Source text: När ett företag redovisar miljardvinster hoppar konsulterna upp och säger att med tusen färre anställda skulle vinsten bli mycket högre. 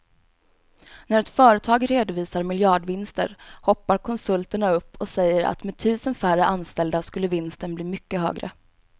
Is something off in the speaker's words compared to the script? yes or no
no